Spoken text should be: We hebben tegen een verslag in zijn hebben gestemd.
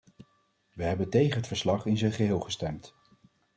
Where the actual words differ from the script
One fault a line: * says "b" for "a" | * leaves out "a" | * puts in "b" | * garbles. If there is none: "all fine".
* says "het" for "een"
* says "geheel" for "hebben"